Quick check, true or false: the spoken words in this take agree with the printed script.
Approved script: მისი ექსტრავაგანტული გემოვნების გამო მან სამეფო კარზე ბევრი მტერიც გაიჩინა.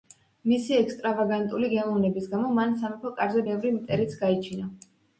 true